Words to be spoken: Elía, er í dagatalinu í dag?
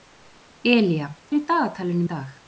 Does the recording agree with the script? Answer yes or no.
yes